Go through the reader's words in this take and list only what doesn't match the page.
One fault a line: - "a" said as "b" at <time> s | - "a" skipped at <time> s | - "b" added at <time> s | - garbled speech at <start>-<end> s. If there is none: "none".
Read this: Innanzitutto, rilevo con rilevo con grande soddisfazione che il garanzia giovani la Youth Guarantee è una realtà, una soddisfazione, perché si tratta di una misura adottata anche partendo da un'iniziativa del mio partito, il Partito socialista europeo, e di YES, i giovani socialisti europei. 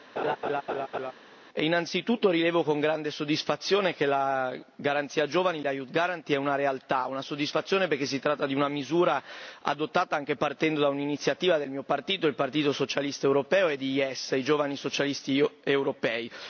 - "rilevo con" skipped at 2.8 s
- "il" said as "la" at 4.1 s